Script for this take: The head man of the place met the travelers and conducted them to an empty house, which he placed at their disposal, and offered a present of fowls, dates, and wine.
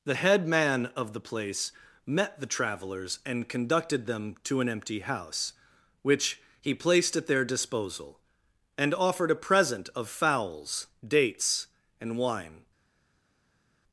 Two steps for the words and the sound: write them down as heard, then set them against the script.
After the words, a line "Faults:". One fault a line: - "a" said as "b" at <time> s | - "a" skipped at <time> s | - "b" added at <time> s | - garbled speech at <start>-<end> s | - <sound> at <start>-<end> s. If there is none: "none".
The head man of the place met the travelers and conducted them to an empty house, which he placed at their disposal, and offered a present of fowls, dates, and wine.
Faults:
none